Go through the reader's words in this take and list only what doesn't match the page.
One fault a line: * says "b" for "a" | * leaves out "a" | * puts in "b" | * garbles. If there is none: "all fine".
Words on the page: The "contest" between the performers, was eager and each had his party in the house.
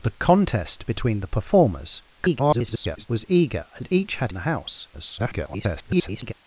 * garbles
* leaves out "his party in"
* garbles